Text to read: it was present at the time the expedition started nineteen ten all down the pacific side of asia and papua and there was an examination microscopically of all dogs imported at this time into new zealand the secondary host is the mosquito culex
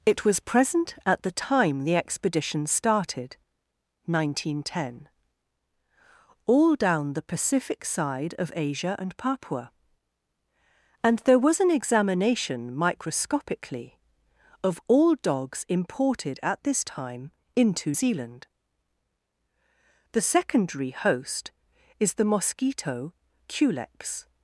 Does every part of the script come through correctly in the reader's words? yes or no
no